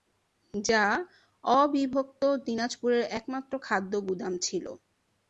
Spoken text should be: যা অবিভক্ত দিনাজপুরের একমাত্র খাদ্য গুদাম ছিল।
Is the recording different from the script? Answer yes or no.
no